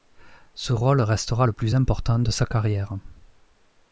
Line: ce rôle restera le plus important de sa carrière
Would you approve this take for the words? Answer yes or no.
yes